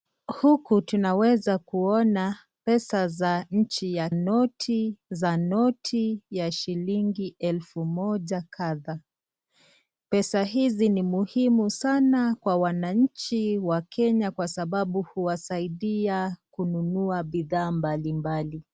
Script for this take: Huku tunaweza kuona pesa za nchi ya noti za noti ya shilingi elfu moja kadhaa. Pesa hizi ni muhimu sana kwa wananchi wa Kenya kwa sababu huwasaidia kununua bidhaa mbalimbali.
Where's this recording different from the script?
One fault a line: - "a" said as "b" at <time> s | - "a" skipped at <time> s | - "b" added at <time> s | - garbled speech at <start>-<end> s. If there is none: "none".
none